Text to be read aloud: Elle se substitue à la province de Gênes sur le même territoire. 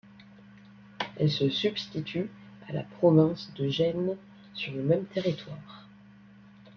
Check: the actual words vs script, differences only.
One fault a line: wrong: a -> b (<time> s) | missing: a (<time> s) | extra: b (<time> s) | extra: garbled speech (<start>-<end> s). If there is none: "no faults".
no faults